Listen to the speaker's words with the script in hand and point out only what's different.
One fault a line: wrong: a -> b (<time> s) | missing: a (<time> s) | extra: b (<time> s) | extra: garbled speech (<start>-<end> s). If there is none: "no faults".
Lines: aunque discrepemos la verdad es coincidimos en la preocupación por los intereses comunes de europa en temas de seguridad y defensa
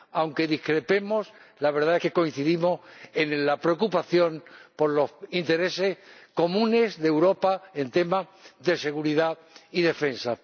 extra: que (2.0 s)